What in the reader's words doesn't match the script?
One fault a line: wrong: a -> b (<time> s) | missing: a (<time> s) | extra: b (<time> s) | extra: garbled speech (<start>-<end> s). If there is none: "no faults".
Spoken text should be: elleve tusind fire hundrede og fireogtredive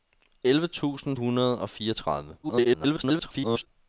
missing: fire (1.2 s)
extra: garbled speech (2.4-3.7 s)